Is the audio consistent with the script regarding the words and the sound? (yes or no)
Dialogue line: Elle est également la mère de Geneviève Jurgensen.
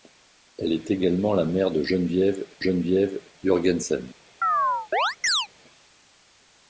no